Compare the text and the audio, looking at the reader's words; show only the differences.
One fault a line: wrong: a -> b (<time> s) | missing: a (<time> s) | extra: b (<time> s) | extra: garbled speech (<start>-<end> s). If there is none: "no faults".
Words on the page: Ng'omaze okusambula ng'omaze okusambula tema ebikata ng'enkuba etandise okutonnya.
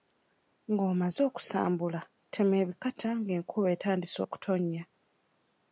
missing: ng'omaze okusambula (2.0 s)